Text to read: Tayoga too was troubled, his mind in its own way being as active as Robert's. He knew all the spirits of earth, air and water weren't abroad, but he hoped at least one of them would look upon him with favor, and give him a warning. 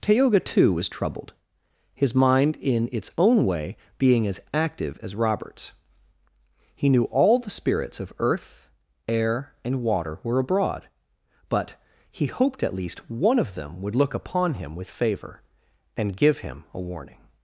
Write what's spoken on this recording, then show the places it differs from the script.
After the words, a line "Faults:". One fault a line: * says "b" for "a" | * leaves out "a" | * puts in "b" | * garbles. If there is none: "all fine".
Tayoga too was troubled, his mind in its own way being as active as Robert's. He knew all the spirits of earth, air and water were abroad, but he hoped at least one of them would look upon him with favor, and give him a warning.
Faults:
* says "were" for "weren't"